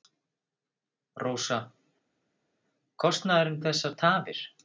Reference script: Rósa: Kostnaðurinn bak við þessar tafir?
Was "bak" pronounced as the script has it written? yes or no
no